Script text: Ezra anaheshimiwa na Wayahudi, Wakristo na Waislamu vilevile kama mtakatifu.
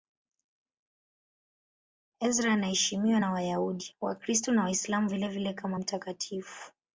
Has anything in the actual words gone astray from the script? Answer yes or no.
no